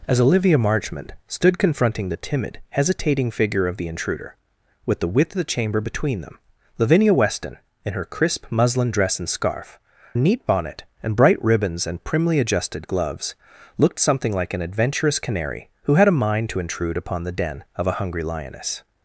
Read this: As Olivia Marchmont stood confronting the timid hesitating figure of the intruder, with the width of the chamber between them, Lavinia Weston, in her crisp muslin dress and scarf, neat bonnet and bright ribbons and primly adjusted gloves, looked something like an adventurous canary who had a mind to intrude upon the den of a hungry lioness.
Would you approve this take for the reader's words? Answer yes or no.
yes